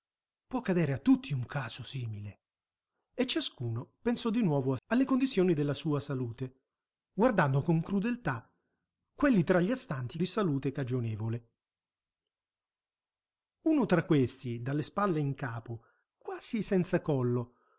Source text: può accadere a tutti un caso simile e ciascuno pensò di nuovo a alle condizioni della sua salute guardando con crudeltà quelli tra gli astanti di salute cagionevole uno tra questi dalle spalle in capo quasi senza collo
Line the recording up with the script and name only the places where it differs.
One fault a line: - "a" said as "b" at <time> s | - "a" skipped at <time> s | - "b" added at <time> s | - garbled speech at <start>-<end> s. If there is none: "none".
none